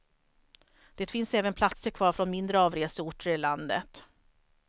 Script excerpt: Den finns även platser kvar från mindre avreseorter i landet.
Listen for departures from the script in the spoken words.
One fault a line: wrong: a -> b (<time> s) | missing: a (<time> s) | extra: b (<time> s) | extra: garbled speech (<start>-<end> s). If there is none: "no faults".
wrong: Den -> Det (0.9 s)